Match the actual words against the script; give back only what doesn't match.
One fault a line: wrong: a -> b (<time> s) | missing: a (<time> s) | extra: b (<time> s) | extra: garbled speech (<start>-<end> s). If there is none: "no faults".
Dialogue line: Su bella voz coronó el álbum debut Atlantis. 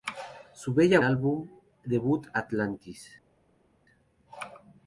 missing: voz coronó el (1.0 s)